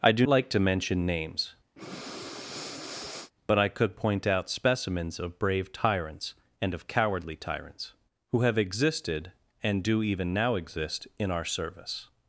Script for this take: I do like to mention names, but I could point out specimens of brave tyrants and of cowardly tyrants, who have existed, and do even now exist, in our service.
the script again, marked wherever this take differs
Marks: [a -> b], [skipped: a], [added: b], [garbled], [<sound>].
I do like to mention names, [breath] but I could point out specimens of brave tyrants and of cowardly tyrants, who have existed, and do even now exist, in our service.